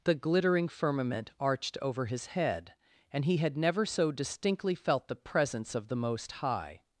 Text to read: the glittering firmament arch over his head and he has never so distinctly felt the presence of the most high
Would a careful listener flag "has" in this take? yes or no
yes